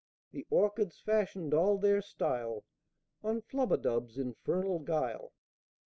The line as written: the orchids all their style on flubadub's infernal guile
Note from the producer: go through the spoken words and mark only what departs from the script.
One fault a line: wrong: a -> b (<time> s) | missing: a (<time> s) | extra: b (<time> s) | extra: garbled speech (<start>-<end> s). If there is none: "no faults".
extra: fashioned (1.0 s)